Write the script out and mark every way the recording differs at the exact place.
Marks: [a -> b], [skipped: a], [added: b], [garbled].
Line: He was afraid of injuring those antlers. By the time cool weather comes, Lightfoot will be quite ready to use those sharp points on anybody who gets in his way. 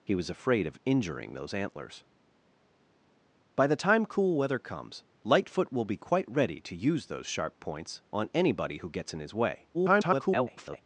He was afraid of injuring those antlers. By the time cool weather comes, Lightfoot will be quite ready to use those sharp points on anybody who gets in his way. [garbled]